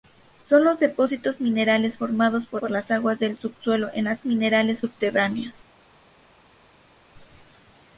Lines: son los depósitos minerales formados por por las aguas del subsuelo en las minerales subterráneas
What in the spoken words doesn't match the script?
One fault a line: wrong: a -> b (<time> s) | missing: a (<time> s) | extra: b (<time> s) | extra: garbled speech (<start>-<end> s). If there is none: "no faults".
no faults